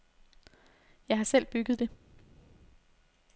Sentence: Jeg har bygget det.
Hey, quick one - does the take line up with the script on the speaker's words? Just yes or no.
no